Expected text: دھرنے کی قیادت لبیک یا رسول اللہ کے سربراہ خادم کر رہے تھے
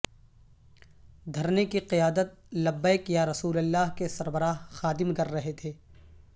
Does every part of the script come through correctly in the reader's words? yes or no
yes